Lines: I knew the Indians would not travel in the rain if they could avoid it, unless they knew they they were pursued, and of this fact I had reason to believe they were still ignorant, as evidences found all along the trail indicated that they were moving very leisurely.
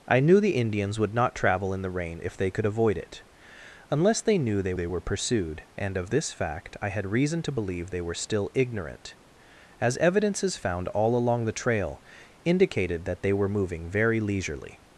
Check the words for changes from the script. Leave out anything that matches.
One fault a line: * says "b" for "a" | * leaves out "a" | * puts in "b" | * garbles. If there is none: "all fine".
all fine